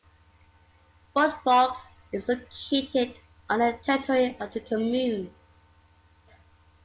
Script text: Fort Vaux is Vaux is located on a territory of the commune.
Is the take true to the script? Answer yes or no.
no